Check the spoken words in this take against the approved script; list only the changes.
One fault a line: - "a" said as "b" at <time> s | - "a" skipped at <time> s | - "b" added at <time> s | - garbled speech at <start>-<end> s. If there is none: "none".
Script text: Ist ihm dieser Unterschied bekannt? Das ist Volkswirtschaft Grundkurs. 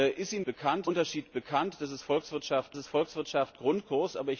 - "dieser" said as "bekannt" at 0.4 s
- "ist Volkswirtschaft" added at 2.8 s